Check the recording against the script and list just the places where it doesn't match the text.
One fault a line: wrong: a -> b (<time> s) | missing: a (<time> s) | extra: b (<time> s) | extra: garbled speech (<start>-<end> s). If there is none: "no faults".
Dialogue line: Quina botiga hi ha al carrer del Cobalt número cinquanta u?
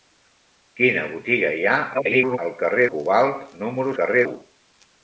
extra: garbled speech (1.9-2.4 s)
missing: del (2.9 s)
wrong: cinquanta -> carrer (4.0 s)